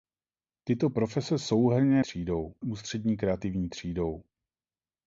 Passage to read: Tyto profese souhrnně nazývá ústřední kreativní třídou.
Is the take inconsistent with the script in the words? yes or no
yes